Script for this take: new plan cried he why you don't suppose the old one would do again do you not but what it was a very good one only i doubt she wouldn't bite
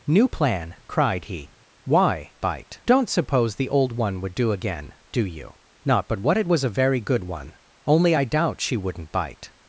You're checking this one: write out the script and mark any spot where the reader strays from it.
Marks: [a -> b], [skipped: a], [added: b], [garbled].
new plan cried he why [you -> bite] don't suppose the old one would do again do you not but what it was a very good one only i doubt she wouldn't bite